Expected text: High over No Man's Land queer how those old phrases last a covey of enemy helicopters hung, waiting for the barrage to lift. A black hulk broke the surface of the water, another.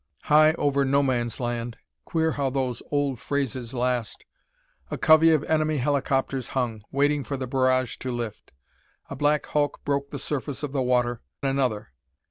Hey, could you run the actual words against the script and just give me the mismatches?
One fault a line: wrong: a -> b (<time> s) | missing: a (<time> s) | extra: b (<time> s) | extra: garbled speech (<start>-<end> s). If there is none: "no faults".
no faults